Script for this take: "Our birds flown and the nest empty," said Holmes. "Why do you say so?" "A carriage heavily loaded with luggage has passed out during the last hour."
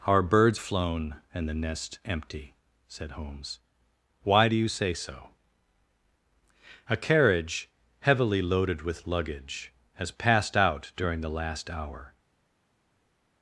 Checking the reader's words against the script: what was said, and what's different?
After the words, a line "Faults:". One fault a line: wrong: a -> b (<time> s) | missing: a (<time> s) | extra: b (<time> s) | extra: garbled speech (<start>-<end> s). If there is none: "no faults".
"Our birds flown and the nest empty," said Holmes. "Why do you say so?" "A carriage heavily loaded with luggage has passed out during the last hour."
Faults:
no faults